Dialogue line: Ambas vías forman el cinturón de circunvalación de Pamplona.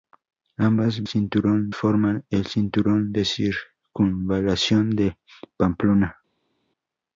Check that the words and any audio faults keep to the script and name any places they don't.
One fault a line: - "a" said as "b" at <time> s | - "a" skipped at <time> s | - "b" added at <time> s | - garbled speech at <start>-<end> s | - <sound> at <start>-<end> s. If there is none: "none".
- "vías" said as "cinturón" at 1.1 s